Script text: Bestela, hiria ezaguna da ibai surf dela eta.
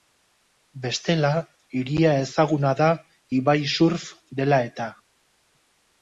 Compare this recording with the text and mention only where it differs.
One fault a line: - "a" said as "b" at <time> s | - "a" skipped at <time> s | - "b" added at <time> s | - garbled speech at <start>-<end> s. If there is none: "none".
none